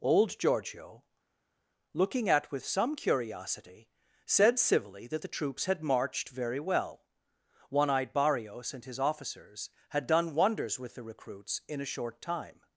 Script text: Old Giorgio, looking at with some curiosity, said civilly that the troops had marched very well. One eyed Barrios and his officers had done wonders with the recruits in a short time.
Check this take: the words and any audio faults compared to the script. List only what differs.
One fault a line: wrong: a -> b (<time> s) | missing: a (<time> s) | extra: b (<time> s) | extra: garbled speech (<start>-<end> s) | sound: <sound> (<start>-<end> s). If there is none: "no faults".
no faults